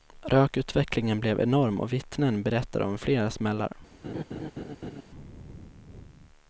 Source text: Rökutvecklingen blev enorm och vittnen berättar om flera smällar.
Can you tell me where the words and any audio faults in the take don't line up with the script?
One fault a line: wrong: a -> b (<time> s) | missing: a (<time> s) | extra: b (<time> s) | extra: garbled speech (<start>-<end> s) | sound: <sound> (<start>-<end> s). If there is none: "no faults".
sound: laugh (4.0-5.0 s)